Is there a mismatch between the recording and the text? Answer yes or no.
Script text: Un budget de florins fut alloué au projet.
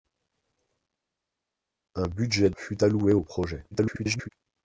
yes